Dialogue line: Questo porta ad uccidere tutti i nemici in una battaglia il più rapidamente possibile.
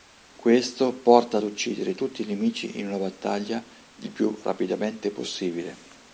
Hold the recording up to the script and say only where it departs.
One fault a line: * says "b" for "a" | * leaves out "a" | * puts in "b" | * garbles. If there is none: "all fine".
all fine